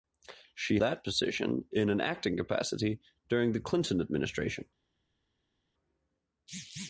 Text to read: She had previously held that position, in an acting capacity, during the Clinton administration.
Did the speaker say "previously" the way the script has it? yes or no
no